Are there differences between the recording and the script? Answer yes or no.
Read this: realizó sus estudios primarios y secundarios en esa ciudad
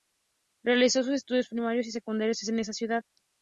no